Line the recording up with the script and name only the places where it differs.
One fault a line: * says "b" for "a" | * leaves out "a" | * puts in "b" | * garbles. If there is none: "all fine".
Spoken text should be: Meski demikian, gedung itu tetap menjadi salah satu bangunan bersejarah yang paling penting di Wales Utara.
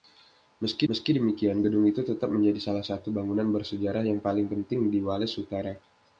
* puts in "meski"